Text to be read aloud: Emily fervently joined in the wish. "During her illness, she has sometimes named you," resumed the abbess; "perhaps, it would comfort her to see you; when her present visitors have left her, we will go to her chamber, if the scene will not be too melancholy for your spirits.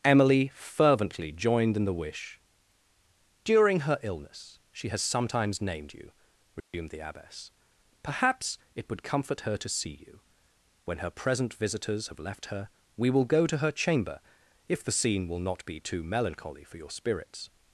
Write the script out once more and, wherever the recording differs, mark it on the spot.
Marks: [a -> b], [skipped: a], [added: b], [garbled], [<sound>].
Emily fervently joined in the wish. "During her illness, she has sometimes named you," resumed [dropout] the abbess; "perhaps, it would comfort her to see you; when her present visitors have left her, we will go to her chamber, if the scene will not be too melancholy for your spirits.